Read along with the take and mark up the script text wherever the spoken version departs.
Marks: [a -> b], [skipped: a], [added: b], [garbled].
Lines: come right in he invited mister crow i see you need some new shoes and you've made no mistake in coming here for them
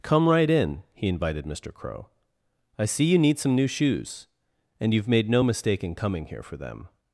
come right in he invited mister crow i see you need some new shoes and you've made no mistake in coming here for them